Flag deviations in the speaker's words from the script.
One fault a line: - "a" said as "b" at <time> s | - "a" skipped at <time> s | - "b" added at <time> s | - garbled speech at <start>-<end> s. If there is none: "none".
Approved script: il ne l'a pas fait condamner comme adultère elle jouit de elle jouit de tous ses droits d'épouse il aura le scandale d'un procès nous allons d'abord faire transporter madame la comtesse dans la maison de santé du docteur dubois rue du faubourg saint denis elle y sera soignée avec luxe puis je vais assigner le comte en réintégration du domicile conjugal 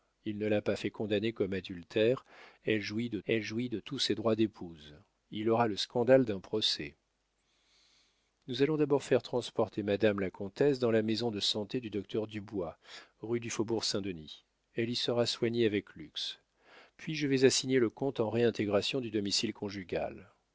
none